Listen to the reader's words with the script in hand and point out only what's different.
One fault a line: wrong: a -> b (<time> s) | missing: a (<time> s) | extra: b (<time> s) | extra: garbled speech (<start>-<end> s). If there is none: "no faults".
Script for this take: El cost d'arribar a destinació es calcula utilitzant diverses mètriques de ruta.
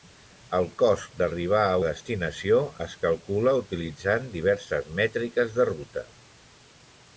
no faults